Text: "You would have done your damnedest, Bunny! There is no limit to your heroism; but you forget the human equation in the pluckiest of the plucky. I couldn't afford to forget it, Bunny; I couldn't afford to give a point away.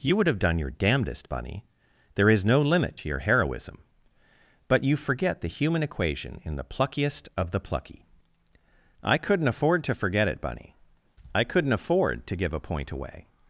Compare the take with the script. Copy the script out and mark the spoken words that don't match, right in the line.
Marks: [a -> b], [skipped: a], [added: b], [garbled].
"You would have done your damnedest, Bunny! There is no limit to your heroism; but you forget the human equation in the pluckiest of the plucky. I couldn't afford to forget it, Bunny; I couldn't afford to give a point away.